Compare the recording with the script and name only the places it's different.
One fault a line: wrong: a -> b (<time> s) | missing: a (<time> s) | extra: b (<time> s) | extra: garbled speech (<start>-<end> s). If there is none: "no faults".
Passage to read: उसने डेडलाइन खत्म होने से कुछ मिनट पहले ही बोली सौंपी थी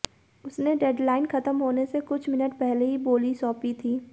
no faults